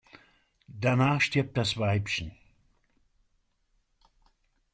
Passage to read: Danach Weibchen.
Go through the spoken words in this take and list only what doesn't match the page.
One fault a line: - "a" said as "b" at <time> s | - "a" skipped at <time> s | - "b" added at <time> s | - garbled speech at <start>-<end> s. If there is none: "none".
- "stirbt das" added at 1.2 s